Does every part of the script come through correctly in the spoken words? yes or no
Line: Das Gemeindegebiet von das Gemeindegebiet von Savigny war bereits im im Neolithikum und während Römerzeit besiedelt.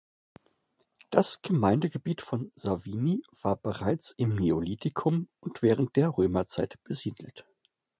no